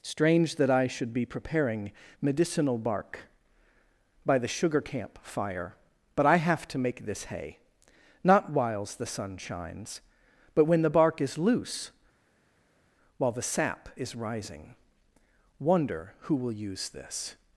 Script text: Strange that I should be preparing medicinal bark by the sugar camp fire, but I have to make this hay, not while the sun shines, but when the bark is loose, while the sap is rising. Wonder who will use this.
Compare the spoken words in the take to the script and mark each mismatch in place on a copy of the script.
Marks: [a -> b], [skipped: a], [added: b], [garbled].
Strange that I should be preparing medicinal bark by the sugar camp fire, but I have to make this hay, not [while -> whiles] the sun shines, but when the bark is loose, while the sap is rising. Wonder who will use this.